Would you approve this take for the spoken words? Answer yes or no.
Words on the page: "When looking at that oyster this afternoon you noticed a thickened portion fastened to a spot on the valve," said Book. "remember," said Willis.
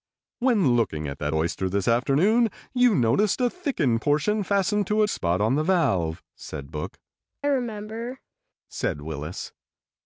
yes